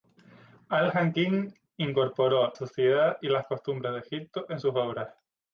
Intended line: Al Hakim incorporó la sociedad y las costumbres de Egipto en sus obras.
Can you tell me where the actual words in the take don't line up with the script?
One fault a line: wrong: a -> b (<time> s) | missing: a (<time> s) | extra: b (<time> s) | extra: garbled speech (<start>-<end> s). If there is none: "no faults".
missing: la (2.5 s)